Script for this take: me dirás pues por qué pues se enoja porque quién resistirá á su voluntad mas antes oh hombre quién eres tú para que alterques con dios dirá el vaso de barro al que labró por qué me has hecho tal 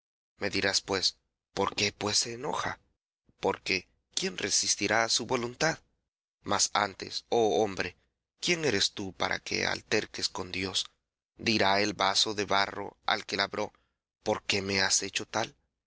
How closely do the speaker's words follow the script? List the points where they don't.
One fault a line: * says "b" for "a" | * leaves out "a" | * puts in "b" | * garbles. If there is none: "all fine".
all fine